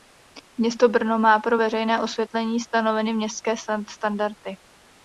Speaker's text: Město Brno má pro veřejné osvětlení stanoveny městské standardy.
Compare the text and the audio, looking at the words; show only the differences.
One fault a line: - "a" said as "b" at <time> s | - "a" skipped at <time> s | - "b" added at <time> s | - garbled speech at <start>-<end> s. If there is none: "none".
none